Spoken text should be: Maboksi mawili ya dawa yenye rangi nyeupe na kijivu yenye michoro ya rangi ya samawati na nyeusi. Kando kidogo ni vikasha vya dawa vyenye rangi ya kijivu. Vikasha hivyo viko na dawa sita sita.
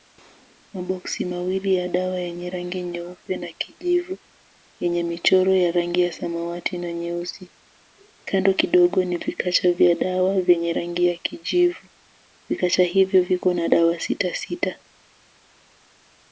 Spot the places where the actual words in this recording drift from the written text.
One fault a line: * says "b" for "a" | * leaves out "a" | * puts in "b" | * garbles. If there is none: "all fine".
all fine